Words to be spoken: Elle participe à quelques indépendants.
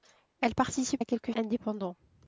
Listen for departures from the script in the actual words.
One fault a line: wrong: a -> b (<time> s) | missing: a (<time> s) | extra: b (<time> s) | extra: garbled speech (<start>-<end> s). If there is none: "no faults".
no faults